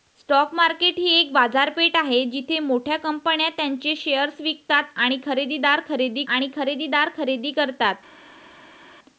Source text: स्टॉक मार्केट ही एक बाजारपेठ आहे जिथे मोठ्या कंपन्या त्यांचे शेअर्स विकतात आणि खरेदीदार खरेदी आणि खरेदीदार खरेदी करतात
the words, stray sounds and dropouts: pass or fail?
pass